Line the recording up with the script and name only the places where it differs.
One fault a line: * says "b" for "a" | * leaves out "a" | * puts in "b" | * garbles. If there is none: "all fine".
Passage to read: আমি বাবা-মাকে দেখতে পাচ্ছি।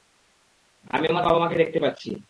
* puts in "আমার"